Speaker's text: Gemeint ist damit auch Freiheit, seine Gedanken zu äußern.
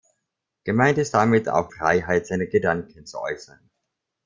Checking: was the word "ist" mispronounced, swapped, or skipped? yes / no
no